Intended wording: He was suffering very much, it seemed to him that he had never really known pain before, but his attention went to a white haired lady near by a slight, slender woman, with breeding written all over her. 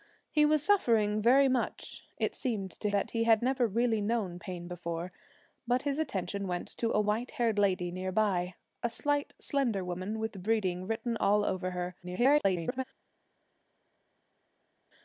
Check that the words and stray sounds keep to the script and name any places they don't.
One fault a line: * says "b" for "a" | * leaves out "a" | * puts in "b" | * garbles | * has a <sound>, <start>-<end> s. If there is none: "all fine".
* leaves out "him"
* garbles